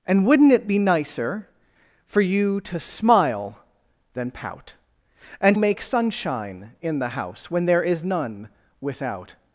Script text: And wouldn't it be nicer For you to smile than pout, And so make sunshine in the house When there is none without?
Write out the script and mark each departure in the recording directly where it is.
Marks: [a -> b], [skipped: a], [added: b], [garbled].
And wouldn't it be nicer For you to smile than pout, And [skipped: so] make sunshine in the house When there is none without?